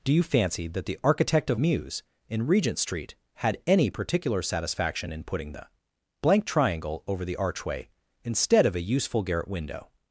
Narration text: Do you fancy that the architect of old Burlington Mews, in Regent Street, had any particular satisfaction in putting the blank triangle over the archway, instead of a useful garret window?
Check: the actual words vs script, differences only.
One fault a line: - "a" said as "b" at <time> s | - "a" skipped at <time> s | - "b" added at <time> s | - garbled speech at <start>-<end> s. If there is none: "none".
- "old Burlington" skipped at 1.6 s